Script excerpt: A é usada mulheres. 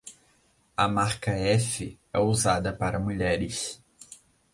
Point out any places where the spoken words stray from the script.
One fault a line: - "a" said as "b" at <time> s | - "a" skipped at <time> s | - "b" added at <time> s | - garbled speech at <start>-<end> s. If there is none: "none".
- "marca F" added at 0.9 s
- "para" added at 2.7 s